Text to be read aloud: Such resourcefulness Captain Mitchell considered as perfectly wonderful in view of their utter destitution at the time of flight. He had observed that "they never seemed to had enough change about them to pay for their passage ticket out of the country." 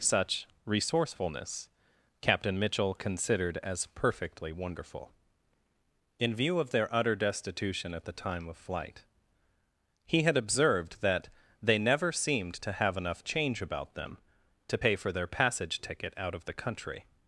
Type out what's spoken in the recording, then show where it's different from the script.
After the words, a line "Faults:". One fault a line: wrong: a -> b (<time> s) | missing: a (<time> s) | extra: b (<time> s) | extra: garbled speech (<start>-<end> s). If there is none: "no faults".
Such resourcefulness Captain Mitchell considered as perfectly wonderful in view of their utter destitution at the time of flight. He had observed that "they never seemed to have enough change about them to pay for their passage ticket out of the country."
Faults:
wrong: had -> have (12.7 s)